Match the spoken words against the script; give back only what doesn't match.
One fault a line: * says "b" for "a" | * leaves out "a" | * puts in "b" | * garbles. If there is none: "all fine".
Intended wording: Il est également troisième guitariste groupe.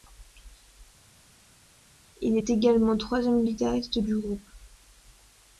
* puts in "du"